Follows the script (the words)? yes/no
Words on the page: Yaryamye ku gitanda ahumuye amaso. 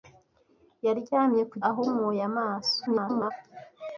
no